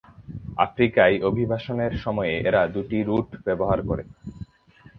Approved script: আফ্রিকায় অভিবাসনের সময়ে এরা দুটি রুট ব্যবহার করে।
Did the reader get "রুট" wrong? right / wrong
right